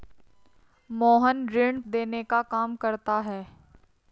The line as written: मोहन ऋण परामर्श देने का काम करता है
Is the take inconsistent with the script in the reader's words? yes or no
yes